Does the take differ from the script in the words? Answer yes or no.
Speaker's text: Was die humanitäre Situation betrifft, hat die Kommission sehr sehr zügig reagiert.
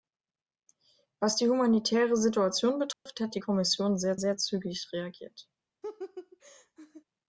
no